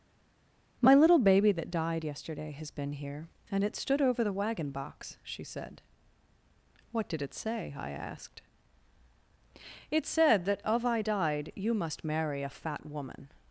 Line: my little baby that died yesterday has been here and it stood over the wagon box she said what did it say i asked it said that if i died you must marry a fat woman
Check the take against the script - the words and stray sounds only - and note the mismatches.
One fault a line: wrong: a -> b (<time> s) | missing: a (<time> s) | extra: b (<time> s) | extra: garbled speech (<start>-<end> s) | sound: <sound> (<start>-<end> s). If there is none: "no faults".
wrong: if -> of (10.6 s)